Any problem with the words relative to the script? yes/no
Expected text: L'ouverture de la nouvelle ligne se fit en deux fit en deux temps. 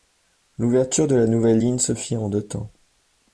yes